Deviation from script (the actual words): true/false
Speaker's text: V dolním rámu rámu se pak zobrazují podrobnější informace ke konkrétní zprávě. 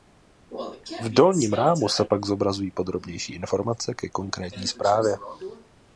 true